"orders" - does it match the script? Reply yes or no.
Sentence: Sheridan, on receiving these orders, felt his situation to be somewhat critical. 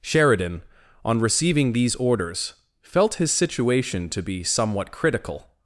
yes